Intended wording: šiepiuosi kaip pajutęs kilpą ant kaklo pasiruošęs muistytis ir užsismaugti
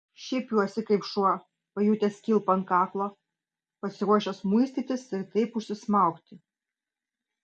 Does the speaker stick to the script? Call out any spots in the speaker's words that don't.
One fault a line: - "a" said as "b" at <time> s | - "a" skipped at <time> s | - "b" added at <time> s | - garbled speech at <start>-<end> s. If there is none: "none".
- "šuo" added at 1.1 s
- "taip" added at 5.3 s